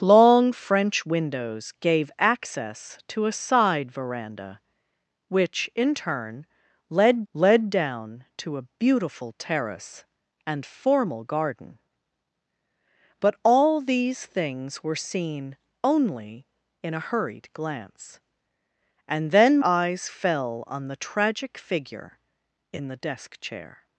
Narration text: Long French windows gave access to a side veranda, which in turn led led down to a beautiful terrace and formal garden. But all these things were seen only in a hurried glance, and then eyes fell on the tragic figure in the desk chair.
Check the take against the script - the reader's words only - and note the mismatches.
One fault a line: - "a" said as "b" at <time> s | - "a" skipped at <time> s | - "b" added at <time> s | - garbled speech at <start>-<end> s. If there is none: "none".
none